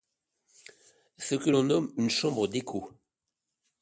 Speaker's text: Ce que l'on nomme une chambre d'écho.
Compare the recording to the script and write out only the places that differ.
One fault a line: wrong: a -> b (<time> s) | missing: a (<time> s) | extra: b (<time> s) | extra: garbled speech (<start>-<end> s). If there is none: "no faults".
no faults